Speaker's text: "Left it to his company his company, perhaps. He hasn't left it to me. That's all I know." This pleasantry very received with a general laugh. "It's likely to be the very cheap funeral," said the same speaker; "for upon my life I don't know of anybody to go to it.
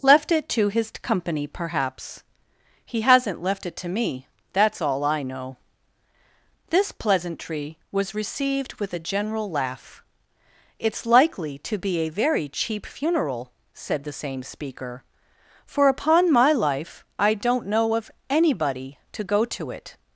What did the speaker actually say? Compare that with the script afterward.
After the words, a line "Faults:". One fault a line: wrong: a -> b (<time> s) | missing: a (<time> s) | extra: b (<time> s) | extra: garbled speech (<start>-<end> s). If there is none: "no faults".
"Left it to his company, perhaps. He hasn't left it to me. That's all I know." This pleasantry was received with a general laugh. "It's likely to be a very cheap funeral," said the same speaker; "for upon my life I don't know of anybody to go to it.
Faults:
missing: his company (1.4 s)
wrong: very -> was (7.9 s)
wrong: the -> a (12.0 s)